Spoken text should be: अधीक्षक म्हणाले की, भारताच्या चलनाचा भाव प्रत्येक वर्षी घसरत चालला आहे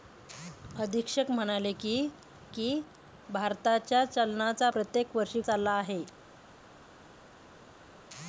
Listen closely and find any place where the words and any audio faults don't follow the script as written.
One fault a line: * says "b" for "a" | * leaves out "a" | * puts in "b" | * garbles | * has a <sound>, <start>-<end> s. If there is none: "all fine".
* puts in "की"
* leaves out "भाव"
* leaves out "घसरत"